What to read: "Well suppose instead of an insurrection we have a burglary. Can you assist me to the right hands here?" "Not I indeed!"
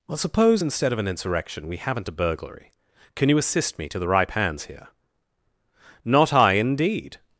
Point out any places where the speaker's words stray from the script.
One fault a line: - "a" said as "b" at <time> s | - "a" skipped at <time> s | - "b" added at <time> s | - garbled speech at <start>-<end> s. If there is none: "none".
- "have" said as "haven't" at 1.8 s
- "right" said as "ripe" at 4.1 s